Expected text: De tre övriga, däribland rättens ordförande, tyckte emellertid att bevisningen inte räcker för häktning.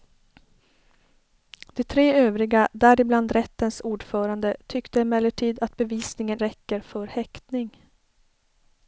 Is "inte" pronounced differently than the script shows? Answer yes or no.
yes